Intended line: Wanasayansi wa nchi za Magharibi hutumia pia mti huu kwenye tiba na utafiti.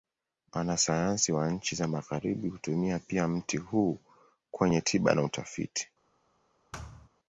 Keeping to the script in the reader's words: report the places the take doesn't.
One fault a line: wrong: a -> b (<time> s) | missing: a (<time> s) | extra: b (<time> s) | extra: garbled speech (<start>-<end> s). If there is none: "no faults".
no faults